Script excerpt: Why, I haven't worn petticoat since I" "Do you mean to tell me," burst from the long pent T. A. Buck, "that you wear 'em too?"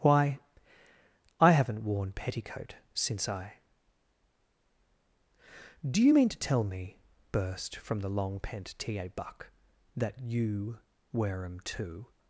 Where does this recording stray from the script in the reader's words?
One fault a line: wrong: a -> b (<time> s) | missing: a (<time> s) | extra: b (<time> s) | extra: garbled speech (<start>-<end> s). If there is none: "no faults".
no faults